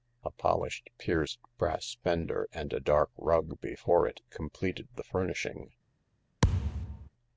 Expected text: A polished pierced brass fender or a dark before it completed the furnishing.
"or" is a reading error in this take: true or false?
true